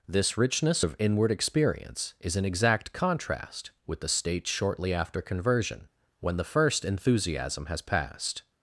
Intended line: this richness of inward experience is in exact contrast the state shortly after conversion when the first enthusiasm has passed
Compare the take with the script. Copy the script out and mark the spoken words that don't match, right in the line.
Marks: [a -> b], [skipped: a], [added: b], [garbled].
this richness of inward experience is in exact contrast [added: with] the state shortly after conversion when the first enthusiasm has passed